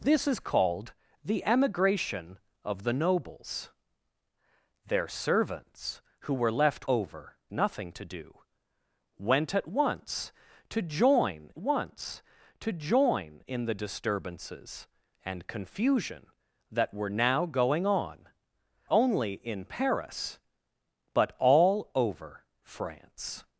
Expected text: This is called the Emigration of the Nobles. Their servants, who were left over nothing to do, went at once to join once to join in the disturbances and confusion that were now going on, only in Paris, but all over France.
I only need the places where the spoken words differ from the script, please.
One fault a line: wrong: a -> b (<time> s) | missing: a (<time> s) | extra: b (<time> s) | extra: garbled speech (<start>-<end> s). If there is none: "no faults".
no faults